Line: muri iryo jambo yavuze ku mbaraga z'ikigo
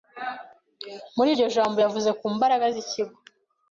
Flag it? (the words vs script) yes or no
no